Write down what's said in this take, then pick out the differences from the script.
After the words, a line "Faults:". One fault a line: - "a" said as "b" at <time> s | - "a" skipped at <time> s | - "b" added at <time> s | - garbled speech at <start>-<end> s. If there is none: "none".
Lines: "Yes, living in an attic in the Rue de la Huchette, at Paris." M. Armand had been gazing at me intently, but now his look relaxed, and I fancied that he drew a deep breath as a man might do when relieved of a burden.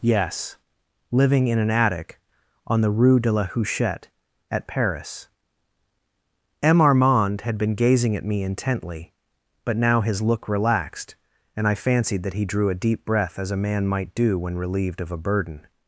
"Yes, living in an attic on the Rue de la Huchette, at Paris." M. Armand had been gazing at me intently, but now his look relaxed, and I fancied that he drew a deep breath as a man might do when relieved of a burden.
Faults:
- "in" said as "on" at 2.6 s